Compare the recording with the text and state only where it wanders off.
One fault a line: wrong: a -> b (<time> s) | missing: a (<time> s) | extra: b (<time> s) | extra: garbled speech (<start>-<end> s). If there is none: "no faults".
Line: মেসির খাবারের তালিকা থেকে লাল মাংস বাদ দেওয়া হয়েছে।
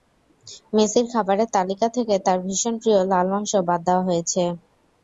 extra: তাঁর ভীষণ প্রিয় (2.2 s)